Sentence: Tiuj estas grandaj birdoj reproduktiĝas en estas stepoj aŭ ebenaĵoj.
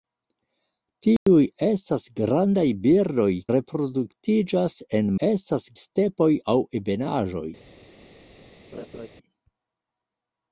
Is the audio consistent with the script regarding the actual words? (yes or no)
yes